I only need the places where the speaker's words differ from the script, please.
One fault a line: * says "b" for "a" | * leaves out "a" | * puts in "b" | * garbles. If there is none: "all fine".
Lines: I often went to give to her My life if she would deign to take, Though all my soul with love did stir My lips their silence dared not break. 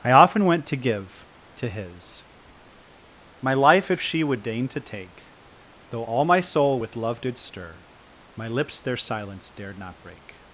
* says "his" for "her"